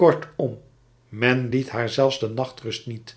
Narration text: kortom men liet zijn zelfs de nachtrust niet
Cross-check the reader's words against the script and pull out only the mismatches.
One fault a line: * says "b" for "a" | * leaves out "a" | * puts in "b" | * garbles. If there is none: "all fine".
* says "haar" for "zijn"